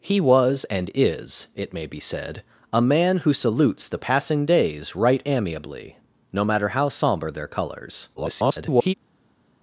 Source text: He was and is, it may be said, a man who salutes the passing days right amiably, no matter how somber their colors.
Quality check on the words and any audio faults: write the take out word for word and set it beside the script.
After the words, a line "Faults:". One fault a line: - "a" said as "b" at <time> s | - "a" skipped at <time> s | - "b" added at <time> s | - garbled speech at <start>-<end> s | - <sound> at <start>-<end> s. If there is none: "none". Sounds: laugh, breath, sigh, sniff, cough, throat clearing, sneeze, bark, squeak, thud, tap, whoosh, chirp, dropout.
He was and is, it may be said, a man who salutes the passing days right amiably, no matter how somber their colors. [garbled]
Faults:
- garbled speech at 8.2-8.9 s